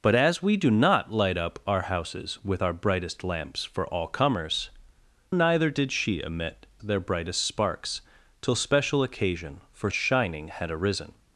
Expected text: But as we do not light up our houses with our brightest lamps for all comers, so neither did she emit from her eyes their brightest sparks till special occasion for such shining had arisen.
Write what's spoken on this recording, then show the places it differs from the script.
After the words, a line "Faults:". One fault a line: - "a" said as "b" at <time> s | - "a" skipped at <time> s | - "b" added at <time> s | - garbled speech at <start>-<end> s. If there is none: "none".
But as we do not light up our houses with our brightest lamps for all comers, neither did she emit their brightest sparks till special occasion for shining had arisen.
Faults:
- "so" skipped at 4.7 s
- "from her eyes" skipped at 6.7 s
- "such" skipped at 9.9 s